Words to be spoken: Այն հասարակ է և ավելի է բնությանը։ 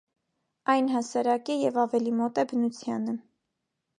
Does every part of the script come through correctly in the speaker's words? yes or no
no